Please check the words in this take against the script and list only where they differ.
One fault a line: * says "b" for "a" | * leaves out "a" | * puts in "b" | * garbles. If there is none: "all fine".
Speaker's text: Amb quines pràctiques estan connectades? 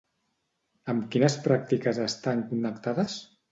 all fine